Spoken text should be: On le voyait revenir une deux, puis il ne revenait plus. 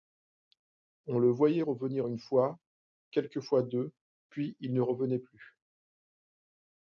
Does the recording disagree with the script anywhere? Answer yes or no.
yes